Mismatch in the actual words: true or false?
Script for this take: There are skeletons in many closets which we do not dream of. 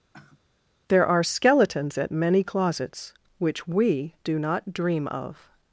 true